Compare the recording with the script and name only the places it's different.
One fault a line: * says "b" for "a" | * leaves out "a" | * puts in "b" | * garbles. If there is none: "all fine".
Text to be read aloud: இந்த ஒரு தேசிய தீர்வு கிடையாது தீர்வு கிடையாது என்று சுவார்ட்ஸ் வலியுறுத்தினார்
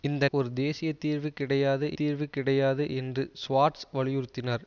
all fine